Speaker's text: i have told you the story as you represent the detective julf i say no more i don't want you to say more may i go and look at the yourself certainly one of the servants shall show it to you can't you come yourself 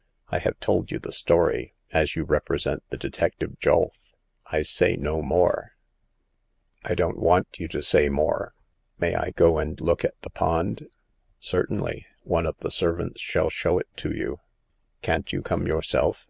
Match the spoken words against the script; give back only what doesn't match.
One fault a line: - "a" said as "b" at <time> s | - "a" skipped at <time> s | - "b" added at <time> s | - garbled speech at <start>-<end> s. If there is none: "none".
- "yourself" said as "pond" at 10.3 s